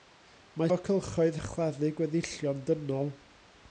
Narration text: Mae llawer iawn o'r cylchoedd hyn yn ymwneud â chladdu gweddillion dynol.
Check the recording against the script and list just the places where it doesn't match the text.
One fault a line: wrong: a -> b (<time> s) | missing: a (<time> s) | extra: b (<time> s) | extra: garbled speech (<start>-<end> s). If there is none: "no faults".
missing: llawer iawn (0.7 s)
missing: hyn yn ymwneud (1.4 s)